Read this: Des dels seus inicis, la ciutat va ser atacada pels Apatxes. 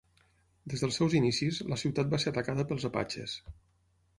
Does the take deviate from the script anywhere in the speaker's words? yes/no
no